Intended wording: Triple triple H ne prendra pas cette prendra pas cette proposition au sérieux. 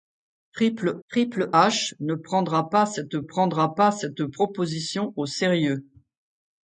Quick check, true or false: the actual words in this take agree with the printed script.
true